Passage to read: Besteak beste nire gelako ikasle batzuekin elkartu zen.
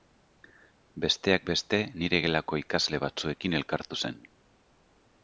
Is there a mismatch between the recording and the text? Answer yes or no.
no